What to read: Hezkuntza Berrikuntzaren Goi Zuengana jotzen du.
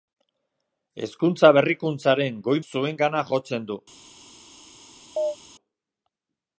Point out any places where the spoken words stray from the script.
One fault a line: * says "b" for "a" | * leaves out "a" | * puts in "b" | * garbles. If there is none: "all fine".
all fine